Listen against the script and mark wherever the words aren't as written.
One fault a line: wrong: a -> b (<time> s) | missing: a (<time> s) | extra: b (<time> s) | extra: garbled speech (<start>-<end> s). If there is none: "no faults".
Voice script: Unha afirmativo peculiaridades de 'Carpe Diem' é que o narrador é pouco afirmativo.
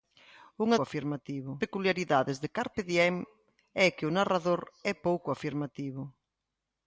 no faults